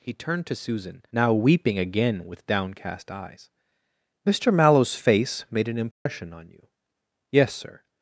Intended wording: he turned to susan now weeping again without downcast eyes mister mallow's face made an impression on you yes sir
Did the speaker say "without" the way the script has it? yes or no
no